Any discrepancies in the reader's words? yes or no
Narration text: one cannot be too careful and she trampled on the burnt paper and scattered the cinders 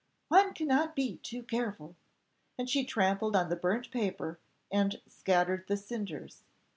no